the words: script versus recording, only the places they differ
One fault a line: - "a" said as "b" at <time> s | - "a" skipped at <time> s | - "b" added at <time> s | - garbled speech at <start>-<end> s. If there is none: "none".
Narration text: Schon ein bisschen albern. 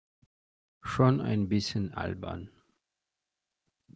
none